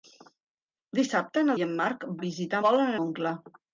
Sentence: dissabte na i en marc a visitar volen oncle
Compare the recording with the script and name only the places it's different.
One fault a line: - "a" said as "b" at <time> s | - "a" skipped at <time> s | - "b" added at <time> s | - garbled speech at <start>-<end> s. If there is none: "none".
none